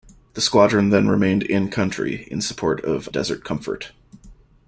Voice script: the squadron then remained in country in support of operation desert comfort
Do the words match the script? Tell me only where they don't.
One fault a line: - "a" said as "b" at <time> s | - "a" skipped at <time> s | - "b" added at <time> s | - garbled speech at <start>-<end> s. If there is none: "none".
- "operation" skipped at 3.1 s